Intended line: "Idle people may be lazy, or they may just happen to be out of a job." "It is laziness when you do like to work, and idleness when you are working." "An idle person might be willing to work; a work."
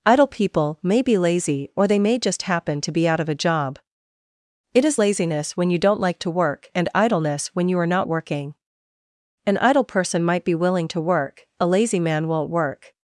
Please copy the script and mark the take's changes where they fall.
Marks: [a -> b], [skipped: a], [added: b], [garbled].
"Idle people may be lazy, or they may just happen to be out of a job." "It is laziness when you [do -> don't] like to work, and idleness when you are [added: not] working." "An idle person might be willing to work; a [added: lazy man won't] work."